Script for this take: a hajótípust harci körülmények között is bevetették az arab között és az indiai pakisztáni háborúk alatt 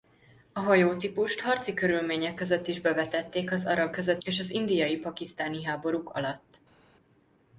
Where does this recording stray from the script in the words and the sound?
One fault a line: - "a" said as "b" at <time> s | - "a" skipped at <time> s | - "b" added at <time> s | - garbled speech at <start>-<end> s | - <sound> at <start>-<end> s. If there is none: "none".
none